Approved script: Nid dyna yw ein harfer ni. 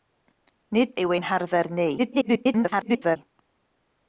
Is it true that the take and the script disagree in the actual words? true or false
true